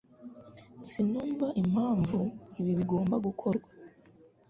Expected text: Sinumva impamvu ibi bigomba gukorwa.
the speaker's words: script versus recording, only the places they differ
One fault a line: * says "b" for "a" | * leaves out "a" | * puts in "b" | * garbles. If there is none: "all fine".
all fine